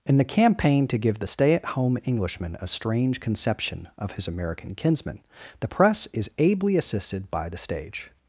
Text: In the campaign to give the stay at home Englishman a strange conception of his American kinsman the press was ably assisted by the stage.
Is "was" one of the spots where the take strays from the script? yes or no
yes